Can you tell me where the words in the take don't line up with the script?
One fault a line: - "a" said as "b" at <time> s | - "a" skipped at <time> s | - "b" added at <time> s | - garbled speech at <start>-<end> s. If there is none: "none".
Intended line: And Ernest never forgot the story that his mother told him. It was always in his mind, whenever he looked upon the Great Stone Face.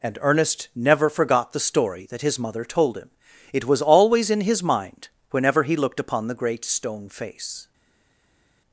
none